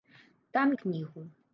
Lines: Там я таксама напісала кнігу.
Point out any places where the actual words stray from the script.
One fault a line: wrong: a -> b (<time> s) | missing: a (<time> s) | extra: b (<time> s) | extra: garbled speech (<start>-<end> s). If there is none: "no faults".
missing: я таксама напісала (0.7 s)